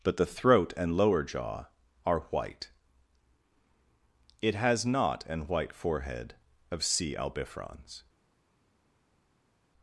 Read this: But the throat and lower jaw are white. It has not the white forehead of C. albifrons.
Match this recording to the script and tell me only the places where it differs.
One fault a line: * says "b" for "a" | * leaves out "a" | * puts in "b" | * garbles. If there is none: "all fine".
* says "an" for "the"